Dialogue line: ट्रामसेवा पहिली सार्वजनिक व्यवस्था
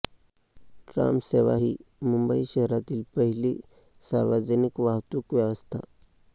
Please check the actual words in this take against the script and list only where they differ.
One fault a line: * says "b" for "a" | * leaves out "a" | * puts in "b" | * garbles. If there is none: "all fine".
* puts in "ही मुंबई शहरातील"
* puts in "वाहतूक"